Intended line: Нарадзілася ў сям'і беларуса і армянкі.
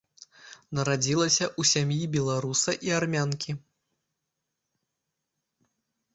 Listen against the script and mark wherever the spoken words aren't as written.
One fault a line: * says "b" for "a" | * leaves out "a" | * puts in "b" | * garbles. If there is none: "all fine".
all fine